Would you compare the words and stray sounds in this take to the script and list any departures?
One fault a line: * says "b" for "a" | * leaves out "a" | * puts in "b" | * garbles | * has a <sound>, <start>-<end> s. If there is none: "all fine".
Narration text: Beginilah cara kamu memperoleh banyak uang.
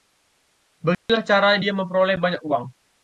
* has a dropout, 0.9-1.1 s
* says "dia" for "kamu"